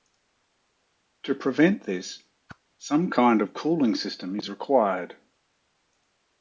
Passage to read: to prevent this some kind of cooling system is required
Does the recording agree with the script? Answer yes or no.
yes